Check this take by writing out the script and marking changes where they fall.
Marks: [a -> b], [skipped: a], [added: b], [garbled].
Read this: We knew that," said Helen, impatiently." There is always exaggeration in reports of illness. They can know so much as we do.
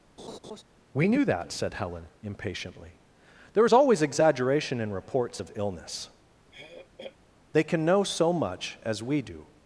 We knew that," said Helen, impatiently." There is always exaggeration in reports of illness. They can know so much as we do.